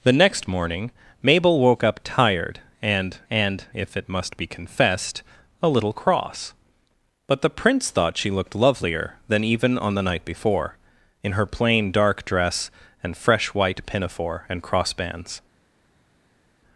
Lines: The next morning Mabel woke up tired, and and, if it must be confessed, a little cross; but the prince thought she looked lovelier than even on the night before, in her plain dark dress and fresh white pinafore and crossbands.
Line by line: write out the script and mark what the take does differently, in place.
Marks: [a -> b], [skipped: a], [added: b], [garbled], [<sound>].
The next morning Mabel woke up tired, and and, if it must be confessed, a little cross; but the prince thought she looked lovelier than even on the night before, in her plain dark dress and fresh white pinafore and crossbands.